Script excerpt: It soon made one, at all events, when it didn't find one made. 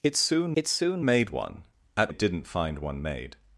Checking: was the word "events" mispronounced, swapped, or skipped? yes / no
yes